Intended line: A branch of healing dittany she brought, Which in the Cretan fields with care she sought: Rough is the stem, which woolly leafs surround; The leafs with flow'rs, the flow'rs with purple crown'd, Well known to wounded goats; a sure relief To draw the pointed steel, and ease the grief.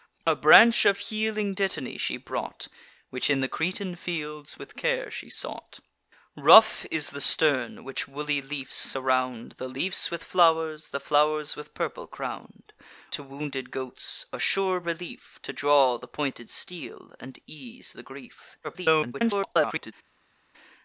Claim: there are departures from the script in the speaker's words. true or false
true